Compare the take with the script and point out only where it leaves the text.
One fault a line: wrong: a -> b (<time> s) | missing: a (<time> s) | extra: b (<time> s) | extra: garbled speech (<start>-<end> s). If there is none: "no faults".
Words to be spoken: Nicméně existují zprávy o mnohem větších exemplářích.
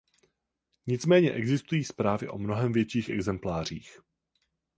no faults